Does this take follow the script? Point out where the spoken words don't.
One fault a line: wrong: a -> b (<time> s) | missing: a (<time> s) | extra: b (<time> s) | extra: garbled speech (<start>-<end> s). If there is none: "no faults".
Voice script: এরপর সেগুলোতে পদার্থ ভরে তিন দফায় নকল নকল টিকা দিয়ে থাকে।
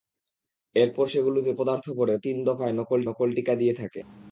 no faults